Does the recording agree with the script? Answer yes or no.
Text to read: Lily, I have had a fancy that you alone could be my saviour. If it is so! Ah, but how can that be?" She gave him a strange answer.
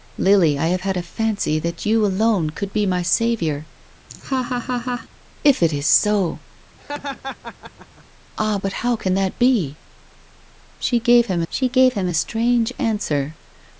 no